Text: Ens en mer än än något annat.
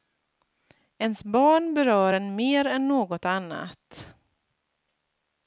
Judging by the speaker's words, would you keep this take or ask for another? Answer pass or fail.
fail